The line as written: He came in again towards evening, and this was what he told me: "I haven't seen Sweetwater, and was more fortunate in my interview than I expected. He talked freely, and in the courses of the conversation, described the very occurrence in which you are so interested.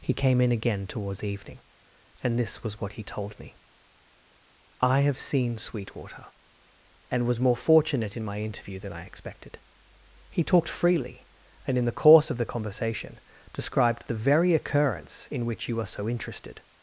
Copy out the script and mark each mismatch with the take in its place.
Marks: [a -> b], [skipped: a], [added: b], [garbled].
He came in again towards evening, and this was what he told me: "I [haven't -> have] seen Sweetwater, and was more fortunate in my interview than I expected. He talked freely, and in the [courses -> course] of the conversation, described the very occurrence in which you are so interested.